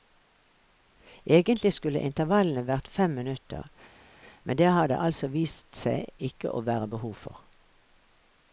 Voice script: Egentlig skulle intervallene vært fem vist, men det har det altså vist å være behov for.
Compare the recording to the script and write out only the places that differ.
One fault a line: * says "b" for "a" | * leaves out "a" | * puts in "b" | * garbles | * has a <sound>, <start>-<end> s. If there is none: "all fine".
* says "minutter" for "vist"
* puts in "seg ikke"